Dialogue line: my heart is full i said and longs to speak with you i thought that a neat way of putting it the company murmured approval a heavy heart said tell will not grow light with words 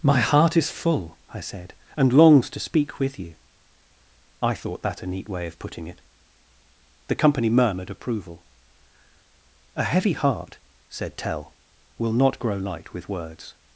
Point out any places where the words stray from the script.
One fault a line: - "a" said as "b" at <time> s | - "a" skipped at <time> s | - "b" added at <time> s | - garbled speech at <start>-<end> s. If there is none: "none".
none